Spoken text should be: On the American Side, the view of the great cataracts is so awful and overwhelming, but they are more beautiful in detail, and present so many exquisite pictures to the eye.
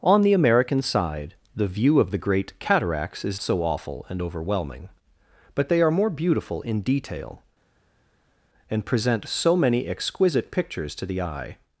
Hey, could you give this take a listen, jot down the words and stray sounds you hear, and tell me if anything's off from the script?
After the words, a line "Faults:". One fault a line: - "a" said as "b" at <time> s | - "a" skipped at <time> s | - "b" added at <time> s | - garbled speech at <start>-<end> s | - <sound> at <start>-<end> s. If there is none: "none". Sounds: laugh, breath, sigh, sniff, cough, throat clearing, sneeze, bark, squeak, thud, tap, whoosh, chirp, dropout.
On the American Side, the view of the great cataracts is so awful and overwhelming, but they are more beautiful in detail, and present so many exquisite pictures to the eye.
Faults:
none